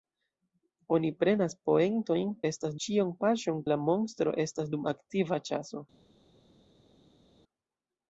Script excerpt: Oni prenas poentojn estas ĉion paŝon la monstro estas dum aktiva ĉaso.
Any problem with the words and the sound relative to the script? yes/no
no